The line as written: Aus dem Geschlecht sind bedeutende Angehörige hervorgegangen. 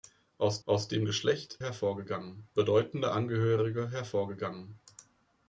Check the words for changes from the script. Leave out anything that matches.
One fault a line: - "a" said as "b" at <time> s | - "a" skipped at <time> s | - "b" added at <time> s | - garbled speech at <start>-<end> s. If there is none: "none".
- "aus" added at 0.7 s
- "sind" said as "hervorgegangen" at 1.6 s